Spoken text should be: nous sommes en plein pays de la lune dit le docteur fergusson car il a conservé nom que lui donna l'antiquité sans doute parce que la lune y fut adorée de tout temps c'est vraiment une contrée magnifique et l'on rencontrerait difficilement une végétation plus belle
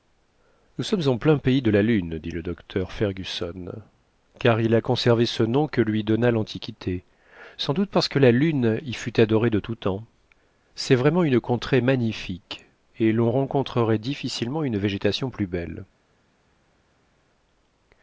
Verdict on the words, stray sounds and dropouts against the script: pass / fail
fail